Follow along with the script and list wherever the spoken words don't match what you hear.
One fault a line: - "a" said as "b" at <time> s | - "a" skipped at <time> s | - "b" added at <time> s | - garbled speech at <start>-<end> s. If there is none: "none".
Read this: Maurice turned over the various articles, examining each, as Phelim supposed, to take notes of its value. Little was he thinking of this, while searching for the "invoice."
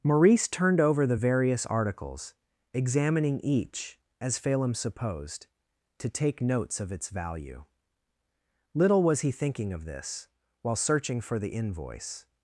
none